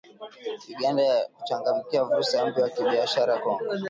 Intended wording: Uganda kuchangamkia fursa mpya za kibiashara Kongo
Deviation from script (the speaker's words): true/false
false